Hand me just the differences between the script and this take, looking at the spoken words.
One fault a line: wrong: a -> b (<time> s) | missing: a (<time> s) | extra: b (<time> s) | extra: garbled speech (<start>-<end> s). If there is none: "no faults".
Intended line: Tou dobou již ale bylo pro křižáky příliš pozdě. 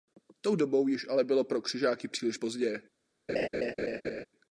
no faults